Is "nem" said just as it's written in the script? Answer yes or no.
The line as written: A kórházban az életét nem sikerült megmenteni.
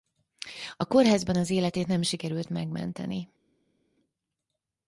yes